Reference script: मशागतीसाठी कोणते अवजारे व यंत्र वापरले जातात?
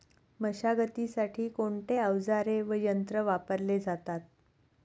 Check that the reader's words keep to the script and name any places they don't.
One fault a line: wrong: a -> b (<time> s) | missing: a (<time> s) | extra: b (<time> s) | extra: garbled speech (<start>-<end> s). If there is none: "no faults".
no faults